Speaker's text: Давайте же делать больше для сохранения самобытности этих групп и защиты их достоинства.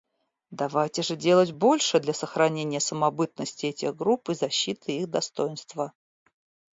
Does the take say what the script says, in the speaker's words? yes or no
yes